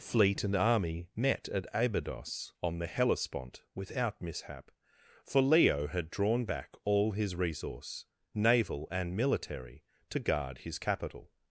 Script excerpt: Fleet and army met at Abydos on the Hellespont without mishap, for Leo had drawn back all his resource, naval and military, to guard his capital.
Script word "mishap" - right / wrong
right